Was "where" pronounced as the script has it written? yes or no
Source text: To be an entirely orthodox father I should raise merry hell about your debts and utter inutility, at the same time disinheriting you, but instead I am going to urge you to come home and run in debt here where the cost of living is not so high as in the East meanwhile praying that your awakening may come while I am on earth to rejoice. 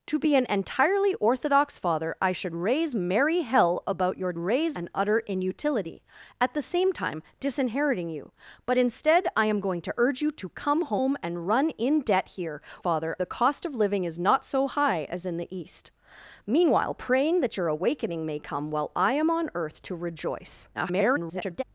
no